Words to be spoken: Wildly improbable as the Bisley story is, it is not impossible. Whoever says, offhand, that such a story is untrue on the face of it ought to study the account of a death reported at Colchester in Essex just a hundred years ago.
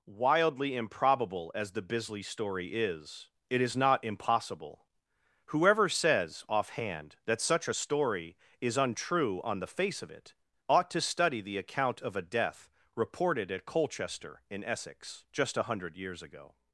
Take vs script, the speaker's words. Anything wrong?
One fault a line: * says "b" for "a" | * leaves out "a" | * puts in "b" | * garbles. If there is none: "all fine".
all fine